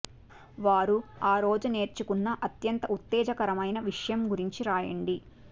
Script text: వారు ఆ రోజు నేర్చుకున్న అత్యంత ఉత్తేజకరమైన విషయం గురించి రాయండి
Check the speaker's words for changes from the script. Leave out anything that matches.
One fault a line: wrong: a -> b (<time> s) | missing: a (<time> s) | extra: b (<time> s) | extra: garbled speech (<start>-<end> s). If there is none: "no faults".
no faults